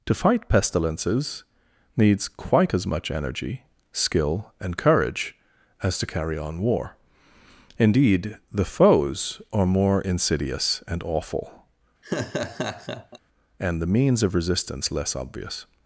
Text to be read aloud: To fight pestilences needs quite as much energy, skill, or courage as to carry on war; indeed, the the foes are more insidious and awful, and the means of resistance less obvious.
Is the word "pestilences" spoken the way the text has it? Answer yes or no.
yes